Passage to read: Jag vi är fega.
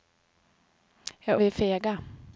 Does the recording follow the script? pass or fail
pass